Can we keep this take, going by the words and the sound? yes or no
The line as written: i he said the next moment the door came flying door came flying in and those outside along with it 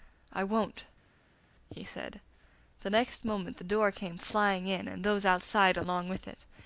no